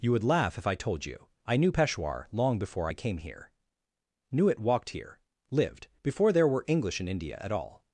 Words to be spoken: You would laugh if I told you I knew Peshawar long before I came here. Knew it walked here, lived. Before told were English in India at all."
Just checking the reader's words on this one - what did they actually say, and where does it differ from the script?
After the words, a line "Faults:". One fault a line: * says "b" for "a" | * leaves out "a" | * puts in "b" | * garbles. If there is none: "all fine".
You would laugh if I told you I knew Peshawar long before I came here. Knew it walked here, lived. Before there were English in India at all."
Faults:
* says "there" for "told"